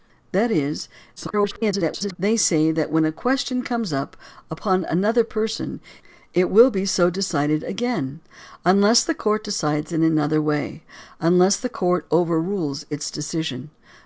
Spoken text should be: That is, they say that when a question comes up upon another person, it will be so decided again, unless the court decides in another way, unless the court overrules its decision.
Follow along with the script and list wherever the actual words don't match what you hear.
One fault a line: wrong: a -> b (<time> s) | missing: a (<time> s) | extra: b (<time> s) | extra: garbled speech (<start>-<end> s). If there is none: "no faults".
extra: garbled speech (1.2-2.2 s)